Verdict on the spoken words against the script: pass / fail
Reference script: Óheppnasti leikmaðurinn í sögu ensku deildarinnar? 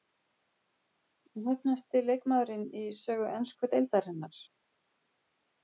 pass